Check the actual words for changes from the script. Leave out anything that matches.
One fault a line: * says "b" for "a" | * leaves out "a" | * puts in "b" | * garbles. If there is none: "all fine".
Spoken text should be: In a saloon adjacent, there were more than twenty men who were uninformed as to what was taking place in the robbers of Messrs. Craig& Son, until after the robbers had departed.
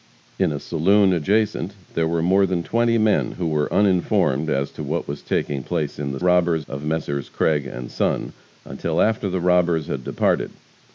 all fine